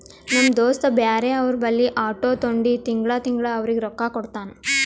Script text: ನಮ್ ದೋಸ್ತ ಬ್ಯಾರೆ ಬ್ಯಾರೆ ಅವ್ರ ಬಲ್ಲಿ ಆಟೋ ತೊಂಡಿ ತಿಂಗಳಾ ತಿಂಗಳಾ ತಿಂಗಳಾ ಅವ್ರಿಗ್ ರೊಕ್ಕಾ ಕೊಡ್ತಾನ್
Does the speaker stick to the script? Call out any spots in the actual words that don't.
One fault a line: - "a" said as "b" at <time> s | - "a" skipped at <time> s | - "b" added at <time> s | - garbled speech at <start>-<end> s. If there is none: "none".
- "ಬ್ಯಾರೆ" skipped at 1.3 s
- "ತಿಂಗಳಾ" skipped at 3.5 s